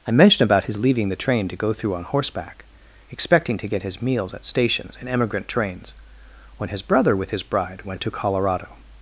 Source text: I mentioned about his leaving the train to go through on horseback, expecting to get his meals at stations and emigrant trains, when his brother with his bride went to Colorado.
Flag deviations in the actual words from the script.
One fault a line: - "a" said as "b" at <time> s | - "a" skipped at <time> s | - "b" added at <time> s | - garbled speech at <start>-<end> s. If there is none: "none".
none